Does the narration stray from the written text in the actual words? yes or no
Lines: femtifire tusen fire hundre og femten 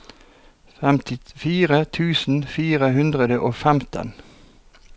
no